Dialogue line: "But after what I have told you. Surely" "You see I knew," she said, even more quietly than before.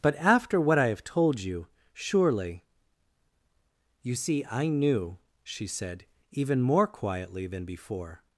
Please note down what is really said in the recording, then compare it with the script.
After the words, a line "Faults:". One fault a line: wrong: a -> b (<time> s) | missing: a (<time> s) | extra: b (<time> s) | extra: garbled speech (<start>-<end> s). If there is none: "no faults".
"But after what I have told you. Surely" "You see I knew," she said, even more quietly than before.
Faults:
no faults